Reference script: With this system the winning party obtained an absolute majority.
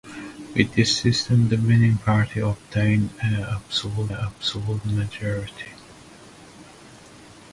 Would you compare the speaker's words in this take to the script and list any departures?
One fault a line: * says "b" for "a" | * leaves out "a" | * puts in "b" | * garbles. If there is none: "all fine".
* puts in "absolute"